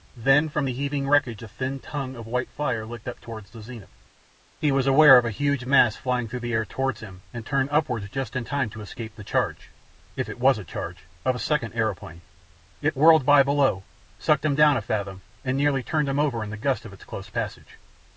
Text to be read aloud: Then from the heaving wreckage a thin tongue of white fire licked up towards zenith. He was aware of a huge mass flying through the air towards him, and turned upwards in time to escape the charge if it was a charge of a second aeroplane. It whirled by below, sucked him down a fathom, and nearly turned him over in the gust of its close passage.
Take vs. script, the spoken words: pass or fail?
fail